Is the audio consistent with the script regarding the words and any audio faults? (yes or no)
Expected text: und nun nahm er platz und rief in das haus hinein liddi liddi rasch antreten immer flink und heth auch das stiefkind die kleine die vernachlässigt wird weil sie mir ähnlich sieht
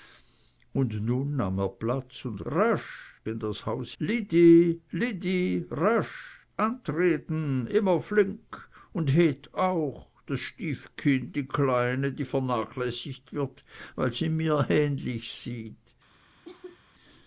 no